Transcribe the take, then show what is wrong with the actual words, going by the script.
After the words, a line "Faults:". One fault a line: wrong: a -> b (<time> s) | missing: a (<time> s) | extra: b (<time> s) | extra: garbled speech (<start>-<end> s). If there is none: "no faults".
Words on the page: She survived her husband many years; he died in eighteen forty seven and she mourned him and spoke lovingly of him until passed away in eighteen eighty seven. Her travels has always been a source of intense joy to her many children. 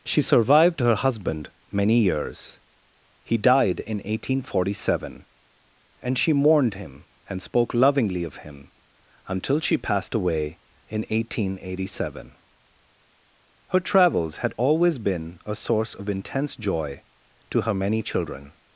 She survived her husband many years; he died in eighteen forty seven and she mourned him and spoke lovingly of him until she passed away in eighteen eighty seven. Her travels had always been a source of intense joy to her many children.
Faults:
extra: she (9.6 s)
wrong: has -> had (14.4 s)